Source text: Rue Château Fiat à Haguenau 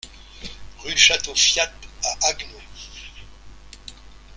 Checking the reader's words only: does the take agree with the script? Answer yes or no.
yes